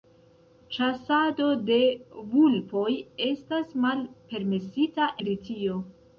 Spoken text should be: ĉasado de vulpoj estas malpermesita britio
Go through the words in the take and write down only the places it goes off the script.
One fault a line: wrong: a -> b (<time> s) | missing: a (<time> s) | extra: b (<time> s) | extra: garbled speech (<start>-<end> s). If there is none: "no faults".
no faults